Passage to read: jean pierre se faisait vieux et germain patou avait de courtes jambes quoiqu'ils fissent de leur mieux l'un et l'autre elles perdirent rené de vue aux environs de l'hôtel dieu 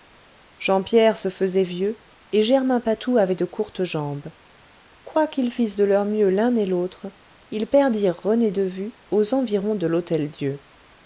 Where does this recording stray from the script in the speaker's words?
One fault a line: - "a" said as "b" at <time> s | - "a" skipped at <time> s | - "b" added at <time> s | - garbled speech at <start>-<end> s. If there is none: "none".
- "elles" said as "ils" at 7.5 s